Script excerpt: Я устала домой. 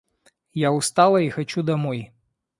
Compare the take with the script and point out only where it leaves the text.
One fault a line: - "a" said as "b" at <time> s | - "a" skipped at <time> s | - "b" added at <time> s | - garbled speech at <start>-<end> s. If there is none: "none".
- "и хочу" added at 1.2 s